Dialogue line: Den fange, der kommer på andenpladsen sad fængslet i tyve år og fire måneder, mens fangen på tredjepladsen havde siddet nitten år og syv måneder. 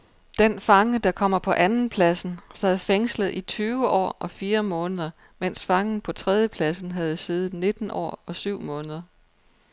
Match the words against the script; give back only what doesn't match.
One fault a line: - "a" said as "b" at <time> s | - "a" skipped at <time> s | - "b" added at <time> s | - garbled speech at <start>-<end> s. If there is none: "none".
none